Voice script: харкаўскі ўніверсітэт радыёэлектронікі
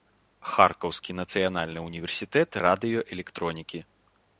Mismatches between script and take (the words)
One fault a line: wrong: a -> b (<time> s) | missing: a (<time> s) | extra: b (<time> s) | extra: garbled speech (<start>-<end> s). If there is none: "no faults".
extra: нацыянальны (1.2 s)